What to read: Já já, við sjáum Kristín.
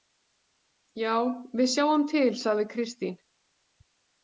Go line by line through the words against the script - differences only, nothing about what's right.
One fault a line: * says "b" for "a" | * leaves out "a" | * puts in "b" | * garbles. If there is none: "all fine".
* leaves out "já"
* puts in "til sagði"